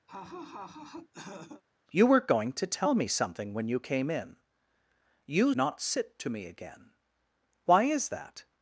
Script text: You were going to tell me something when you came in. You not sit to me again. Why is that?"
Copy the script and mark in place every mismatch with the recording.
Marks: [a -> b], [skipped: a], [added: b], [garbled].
You were going to tell me something when you came in. You not sit to me again. Why is that?"